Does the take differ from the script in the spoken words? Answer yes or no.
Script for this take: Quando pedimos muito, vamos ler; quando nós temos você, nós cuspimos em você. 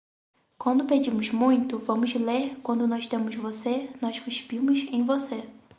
no